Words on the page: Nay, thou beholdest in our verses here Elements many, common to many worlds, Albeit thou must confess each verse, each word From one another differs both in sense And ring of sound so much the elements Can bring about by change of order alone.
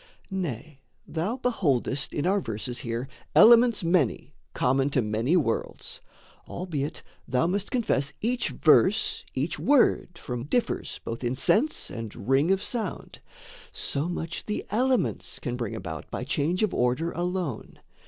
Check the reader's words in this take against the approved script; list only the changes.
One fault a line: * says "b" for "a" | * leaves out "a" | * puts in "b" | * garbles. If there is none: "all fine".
* leaves out "one another"